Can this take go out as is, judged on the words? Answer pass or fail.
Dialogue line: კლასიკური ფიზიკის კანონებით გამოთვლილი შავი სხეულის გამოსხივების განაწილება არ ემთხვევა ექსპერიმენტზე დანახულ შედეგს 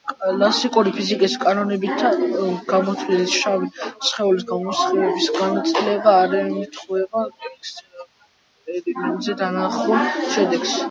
pass